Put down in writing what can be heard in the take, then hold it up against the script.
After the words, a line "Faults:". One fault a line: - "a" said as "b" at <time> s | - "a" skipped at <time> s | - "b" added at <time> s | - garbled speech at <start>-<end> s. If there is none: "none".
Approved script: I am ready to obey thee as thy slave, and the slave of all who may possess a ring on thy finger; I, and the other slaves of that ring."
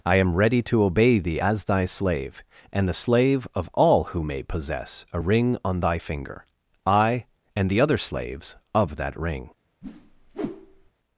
I am ready to obey thee as thy slave, and the slave of all who may possess a ring on thy finger; I, and the other slaves of that ring."
Faults:
none